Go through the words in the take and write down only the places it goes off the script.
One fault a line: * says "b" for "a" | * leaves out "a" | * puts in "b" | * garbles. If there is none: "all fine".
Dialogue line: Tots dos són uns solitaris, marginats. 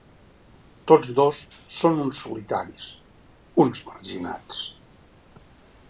* puts in "uns"